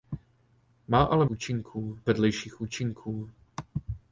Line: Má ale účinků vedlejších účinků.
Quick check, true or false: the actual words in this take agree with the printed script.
true